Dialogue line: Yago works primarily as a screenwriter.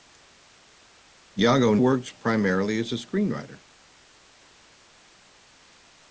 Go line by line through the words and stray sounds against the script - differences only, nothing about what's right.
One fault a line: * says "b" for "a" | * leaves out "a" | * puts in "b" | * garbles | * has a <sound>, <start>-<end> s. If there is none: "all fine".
all fine